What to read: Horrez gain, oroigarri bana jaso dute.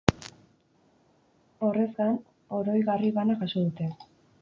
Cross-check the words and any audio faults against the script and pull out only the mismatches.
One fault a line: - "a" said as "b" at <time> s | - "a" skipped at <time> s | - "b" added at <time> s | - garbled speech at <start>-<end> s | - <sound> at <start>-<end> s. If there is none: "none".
none